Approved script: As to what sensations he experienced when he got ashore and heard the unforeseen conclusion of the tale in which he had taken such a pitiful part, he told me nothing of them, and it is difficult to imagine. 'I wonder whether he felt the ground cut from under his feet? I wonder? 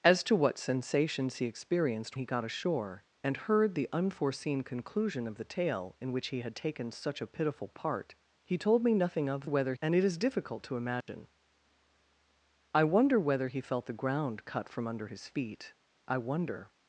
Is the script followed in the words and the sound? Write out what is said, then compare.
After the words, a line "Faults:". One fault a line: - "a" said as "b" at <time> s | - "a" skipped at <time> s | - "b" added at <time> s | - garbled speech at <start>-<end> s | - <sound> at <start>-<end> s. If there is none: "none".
As to what sensations he experienced he got ashore and heard the unforeseen conclusion of the tale in which he had taken such a pitiful part, he told me nothing of whether, and it is difficult to imagine. 'I wonder whether he felt the ground cut from under his feet? I wonder?
Faults:
- "when" skipped at 2.2 s
- "them" said as "whether" at 9.4 s
- dropout at 11.0-11.1 s